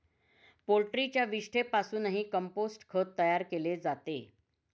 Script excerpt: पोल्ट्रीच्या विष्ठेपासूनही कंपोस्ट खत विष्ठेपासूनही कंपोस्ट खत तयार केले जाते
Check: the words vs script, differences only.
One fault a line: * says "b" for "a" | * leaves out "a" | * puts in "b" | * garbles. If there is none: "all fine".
* leaves out "विष्ठेपासूनही कंपोस्ट खत"